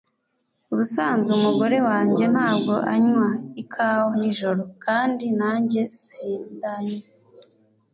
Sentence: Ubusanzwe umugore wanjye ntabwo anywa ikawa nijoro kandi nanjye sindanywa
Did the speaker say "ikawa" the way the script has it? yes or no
yes